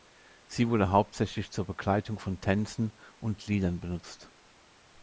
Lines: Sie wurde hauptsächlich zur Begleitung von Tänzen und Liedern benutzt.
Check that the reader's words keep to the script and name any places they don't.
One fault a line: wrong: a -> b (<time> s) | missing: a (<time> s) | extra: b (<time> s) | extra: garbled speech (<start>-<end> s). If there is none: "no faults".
no faults